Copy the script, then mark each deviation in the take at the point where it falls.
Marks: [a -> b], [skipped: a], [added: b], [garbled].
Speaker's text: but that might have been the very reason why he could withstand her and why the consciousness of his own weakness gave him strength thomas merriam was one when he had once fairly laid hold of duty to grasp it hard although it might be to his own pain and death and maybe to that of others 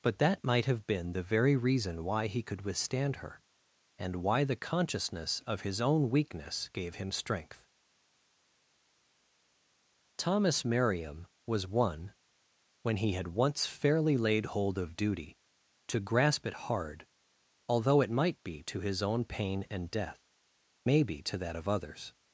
but that might have been the very reason why he could withstand her and why the consciousness of his own weakness gave him strength thomas merriam was one when he had once fairly laid hold of duty to grasp it hard although it might be to his own pain and death [skipped: and] maybe to that of others